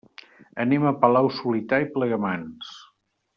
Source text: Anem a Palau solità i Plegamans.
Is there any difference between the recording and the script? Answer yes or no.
no